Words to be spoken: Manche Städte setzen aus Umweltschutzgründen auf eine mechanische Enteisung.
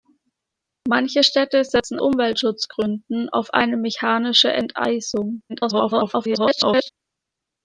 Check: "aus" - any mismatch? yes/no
yes